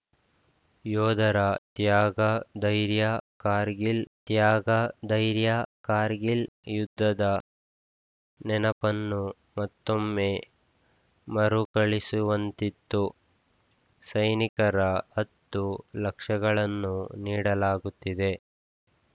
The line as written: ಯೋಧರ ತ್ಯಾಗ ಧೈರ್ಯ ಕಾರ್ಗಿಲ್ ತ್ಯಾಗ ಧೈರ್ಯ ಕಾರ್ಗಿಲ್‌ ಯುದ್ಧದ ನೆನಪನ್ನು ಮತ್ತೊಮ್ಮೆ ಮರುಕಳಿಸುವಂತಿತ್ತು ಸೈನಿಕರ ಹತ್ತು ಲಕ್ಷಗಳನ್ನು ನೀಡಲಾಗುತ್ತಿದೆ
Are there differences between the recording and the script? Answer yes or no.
no